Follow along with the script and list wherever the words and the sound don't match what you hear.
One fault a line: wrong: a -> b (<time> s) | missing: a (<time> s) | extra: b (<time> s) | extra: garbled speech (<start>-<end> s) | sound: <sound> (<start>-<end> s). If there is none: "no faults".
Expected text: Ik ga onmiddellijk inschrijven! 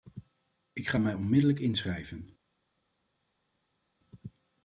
extra: mij (1.0 s)